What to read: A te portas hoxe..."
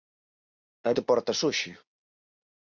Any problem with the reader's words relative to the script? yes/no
no